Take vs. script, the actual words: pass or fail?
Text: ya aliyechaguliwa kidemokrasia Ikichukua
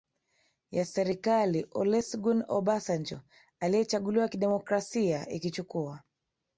fail